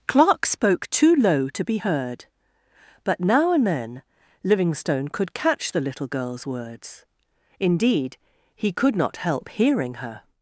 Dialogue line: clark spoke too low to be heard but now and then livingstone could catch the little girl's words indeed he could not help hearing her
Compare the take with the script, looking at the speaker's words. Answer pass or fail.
pass